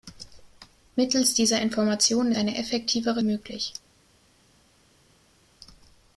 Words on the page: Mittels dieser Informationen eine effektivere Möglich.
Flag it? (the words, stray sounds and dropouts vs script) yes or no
no